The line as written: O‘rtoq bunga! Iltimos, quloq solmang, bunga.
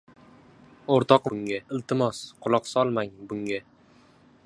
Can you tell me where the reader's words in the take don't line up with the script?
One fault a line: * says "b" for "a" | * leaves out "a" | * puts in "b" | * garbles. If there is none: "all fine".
all fine